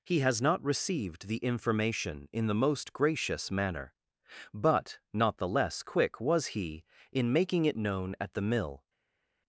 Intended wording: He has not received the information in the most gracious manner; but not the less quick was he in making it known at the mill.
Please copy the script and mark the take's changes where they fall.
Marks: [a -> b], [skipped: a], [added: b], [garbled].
He has not received the information in the most gracious manner; but not the less quick was he in making it known at the mill.